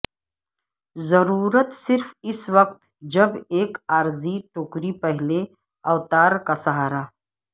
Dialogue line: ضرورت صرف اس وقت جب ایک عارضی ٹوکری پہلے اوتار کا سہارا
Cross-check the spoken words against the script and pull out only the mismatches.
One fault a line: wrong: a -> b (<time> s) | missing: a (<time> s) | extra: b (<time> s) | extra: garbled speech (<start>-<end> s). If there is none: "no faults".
no faults